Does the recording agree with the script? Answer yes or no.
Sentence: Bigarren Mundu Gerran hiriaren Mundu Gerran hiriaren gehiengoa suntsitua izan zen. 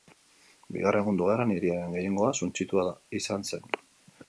no